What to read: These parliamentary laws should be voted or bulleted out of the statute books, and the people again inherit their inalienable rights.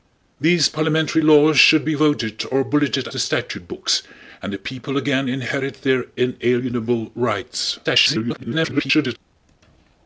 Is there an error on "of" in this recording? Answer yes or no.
yes